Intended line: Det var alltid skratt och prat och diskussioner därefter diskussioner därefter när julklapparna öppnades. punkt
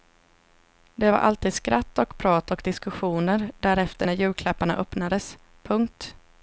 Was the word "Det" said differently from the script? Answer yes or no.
no